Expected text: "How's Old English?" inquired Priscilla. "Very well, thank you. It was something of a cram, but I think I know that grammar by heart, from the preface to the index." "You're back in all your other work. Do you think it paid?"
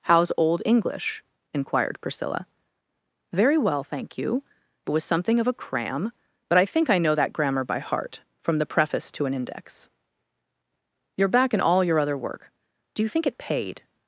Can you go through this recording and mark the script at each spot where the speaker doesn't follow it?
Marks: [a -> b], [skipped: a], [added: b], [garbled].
"How's Old English?" inquired Priscilla. "Very well, thank you. It was something of a cram, but I think I know that grammar by heart, from the preface to [the -> an] index." "You're back in all your other work. Do you think it paid?"